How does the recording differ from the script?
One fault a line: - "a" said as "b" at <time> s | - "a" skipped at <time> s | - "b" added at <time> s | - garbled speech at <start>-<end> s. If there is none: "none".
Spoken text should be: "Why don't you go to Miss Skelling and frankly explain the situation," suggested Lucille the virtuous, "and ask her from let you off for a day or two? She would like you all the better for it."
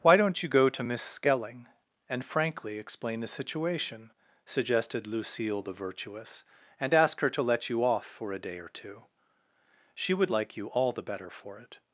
- "from" said as "to" at 7.3 s